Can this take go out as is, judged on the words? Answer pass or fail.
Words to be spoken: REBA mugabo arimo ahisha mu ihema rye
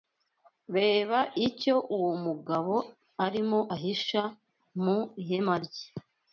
fail